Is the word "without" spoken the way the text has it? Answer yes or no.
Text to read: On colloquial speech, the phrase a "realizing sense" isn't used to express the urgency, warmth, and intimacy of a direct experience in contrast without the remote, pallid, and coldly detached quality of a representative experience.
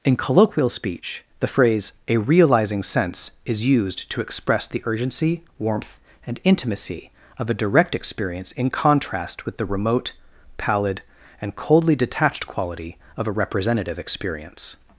no